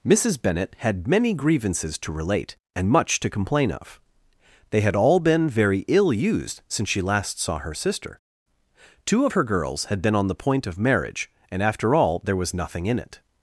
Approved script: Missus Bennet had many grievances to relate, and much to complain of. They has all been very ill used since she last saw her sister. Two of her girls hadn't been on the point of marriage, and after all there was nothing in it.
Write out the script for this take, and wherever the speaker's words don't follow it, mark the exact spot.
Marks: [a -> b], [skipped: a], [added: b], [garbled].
Missus Bennet had many grievances to relate, and much to complain of. They [has -> had] all been very ill used since she last saw her sister. Two of her girls [hadn't -> had] been on the point of marriage, and after all there was nothing in it.